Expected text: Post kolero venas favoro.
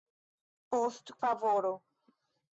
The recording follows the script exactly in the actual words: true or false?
false